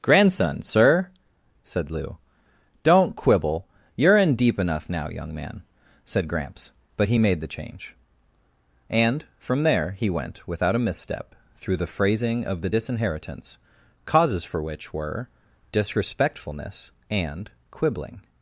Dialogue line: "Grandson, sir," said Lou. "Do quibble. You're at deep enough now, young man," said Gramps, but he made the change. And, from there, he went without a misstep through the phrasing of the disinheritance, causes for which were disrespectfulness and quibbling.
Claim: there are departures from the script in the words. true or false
true